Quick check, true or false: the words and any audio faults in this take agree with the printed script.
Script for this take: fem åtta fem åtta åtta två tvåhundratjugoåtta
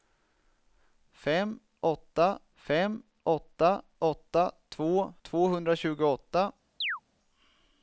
false